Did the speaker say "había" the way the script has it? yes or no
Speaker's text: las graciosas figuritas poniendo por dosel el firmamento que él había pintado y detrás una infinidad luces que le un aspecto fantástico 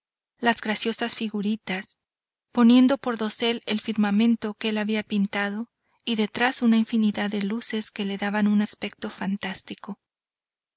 yes